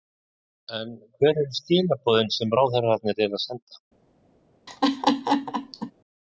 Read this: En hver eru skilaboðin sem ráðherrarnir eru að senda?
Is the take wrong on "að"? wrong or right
right